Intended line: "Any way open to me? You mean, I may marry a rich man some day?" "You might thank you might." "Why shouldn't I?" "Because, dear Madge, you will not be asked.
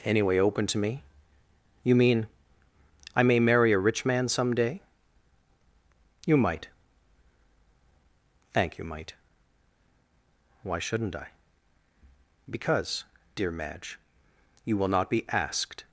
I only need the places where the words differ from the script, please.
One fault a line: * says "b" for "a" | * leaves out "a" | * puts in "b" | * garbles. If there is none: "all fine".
all fine